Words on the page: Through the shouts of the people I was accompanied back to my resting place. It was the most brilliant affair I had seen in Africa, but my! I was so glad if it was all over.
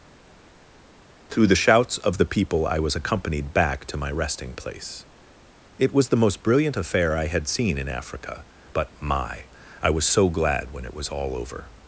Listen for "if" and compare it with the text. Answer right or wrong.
wrong